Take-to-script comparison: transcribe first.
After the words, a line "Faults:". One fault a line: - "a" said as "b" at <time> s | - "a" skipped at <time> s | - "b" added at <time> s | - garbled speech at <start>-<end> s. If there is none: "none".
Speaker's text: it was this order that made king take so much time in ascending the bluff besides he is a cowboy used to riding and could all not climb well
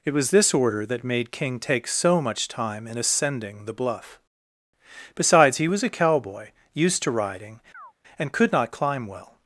it was this order that made king take so much time in ascending the bluff besides he was a cowboy used to riding and could not climb well
Faults:
- "is" said as "was" at 5.7 s
- "all" skipped at 8.5 s